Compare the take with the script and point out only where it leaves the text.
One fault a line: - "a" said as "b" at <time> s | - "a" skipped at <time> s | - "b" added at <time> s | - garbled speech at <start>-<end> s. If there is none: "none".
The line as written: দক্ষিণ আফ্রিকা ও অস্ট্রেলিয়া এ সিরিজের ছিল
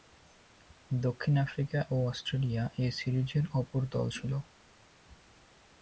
- "অপর দল" added at 3.5 s